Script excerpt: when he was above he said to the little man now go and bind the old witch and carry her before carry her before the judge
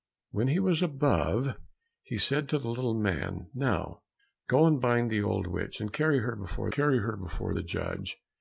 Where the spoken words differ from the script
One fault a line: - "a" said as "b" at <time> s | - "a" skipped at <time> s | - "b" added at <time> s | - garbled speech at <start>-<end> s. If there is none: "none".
none